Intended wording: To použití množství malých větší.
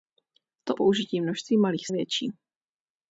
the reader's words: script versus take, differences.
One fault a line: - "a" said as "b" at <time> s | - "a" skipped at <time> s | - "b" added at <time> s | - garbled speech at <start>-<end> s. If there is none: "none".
none